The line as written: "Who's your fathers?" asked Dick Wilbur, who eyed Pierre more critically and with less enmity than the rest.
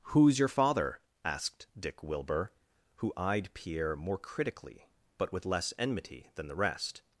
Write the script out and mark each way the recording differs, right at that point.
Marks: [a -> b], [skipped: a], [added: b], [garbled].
"Who's your [fathers?" -> father] asked Dick Wilbur, who eyed Pierre more critically [and -> but] with less enmity than the rest.